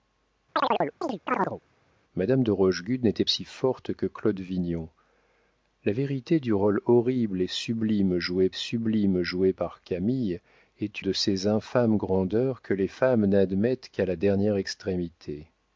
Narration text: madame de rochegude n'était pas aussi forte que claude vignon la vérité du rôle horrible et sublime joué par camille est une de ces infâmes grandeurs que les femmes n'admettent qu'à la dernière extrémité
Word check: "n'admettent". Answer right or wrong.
right